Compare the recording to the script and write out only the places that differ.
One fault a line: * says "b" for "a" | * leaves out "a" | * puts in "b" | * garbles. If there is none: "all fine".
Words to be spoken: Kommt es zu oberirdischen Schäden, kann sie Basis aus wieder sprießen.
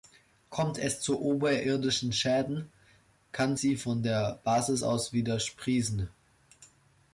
* puts in "von der"